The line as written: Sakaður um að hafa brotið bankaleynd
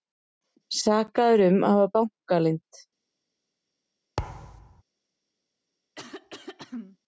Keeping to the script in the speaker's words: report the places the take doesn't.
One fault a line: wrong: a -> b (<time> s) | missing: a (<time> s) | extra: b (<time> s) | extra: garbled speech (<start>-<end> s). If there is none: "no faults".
missing: brotið (1.9 s)